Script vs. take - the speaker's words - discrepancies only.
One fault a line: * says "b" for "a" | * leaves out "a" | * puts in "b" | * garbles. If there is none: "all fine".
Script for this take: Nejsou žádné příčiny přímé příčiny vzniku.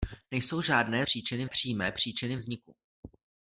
all fine